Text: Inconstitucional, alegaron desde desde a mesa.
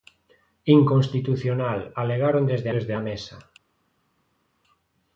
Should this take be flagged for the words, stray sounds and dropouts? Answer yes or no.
no